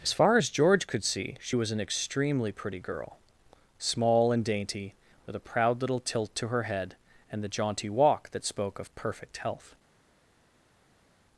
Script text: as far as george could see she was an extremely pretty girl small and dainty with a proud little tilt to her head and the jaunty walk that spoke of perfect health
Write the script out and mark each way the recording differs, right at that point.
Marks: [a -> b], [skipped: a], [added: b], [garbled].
as far as george could see she was an extremely pretty girl small and dainty with a proud little tilt to her head and the jaunty walk that spoke of perfect health